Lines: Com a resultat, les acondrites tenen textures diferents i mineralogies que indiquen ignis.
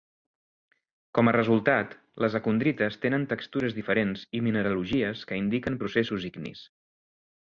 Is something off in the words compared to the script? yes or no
yes